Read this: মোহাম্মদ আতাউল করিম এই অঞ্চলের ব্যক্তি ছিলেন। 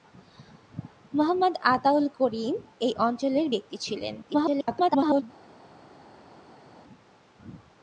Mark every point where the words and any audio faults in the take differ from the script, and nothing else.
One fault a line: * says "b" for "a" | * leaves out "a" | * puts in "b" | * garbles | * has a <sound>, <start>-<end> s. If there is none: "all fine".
* garbles